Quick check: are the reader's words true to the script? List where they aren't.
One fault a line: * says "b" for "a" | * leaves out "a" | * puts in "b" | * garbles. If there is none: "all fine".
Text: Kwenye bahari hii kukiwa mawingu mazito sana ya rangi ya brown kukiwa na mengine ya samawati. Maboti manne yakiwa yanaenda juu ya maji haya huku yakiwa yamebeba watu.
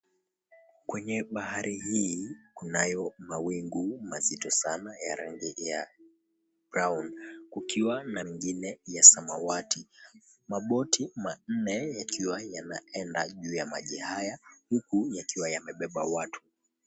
* says "kunayo" for "kukiwa"